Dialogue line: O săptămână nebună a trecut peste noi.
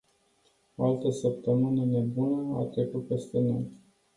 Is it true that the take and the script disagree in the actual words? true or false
true